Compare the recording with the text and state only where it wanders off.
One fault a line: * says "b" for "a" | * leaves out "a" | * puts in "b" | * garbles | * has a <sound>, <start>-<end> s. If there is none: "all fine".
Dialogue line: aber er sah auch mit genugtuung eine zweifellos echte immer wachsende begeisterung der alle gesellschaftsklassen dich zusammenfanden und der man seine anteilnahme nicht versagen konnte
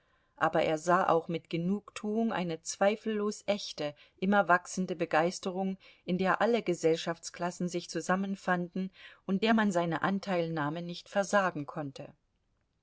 * puts in "in"
* says "sich" for "dich"